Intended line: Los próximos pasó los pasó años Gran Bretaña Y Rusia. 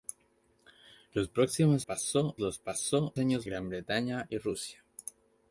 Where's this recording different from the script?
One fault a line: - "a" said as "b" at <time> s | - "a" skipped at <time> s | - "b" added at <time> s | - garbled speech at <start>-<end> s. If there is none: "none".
none